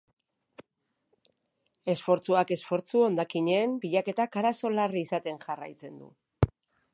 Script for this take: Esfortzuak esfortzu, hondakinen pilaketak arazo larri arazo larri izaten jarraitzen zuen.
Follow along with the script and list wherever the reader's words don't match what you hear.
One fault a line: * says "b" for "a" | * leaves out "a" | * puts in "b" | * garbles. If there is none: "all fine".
* leaves out "arazo larri"
* says "du" for "zuen"